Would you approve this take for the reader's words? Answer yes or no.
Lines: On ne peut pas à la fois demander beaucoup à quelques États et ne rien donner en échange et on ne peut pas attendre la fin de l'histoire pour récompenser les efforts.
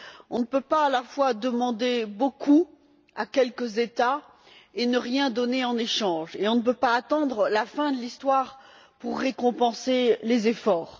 yes